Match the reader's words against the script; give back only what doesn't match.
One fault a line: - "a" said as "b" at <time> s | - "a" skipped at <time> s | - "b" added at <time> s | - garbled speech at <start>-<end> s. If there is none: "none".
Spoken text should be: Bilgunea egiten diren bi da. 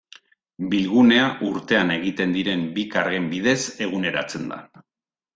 - "urtean" added at 1.5 s
- "kargen bidez eguneratzen" added at 3.0 s